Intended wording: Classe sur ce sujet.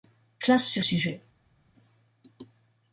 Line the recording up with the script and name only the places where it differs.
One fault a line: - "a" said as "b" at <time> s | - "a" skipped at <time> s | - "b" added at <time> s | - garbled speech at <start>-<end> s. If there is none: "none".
- "ce" skipped at 0.9 s